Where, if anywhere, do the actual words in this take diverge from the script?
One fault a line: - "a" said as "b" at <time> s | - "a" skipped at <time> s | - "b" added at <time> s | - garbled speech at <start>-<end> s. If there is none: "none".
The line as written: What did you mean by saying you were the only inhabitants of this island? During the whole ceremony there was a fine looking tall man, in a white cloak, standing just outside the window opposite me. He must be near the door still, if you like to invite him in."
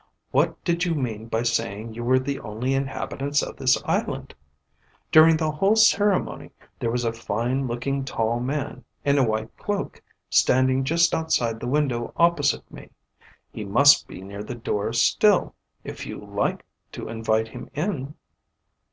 none